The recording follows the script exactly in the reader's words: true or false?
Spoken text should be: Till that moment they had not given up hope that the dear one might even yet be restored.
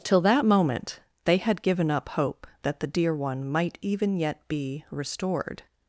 false